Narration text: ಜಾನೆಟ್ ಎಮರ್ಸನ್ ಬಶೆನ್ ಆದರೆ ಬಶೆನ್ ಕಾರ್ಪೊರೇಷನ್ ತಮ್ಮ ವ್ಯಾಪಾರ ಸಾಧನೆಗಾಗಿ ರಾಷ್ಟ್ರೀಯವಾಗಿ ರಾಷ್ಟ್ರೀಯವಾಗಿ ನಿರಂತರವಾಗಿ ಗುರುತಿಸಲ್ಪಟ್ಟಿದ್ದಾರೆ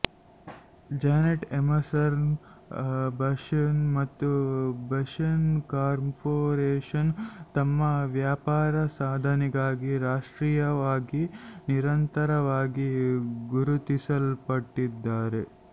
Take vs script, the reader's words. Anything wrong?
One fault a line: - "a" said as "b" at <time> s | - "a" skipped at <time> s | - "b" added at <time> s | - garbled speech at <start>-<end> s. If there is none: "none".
- "ಆದರೆ" said as "ಮತ್ತು" at 4.0 s
- "ರಾಷ್ಟ್ರೀಯವಾಗಿ" skipped at 11.2 s